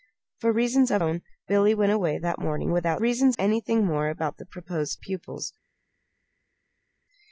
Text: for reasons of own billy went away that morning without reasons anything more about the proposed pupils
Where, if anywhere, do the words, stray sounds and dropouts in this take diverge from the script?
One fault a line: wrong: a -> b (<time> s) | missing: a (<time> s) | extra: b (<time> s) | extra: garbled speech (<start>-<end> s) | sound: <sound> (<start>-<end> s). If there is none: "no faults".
no faults